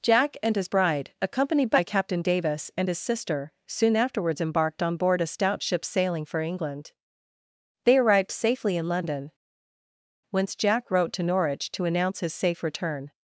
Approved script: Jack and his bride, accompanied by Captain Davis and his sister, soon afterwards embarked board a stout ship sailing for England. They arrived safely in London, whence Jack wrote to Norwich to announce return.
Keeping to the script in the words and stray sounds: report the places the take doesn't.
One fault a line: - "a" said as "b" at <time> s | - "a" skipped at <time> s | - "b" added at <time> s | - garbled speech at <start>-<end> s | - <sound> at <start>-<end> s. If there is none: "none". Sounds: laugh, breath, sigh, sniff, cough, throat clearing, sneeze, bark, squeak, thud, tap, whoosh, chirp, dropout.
- "on" added at 4.8 s
- "his safe" added at 12.2 s